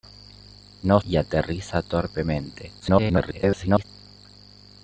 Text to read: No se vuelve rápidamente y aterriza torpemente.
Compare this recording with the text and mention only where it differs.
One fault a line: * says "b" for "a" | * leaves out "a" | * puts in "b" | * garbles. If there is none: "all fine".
* leaves out "se vuelve rápidamente"
* garbles